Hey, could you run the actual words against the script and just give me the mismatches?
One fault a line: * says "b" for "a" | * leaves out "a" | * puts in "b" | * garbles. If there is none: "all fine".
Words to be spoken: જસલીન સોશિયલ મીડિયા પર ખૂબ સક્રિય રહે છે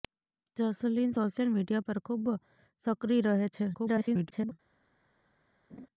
* garbles